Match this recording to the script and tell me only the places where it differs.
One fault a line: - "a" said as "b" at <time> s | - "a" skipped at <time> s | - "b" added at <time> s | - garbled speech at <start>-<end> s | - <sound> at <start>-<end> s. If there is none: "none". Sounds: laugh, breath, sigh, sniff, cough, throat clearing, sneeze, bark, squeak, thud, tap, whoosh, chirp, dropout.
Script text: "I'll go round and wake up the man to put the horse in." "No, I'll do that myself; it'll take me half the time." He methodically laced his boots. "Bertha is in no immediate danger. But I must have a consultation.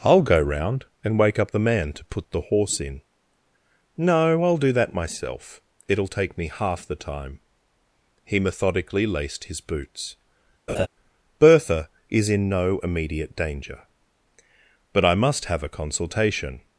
- laugh at 10.7-10.9 s